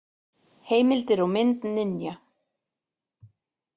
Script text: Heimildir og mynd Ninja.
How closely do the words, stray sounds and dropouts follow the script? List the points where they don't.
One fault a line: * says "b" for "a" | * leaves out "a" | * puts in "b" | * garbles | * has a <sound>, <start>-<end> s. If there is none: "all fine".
all fine